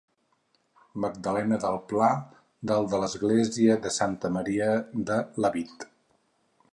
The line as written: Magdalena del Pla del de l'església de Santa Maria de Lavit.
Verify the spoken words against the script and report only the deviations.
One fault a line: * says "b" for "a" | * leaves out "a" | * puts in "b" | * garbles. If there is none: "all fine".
all fine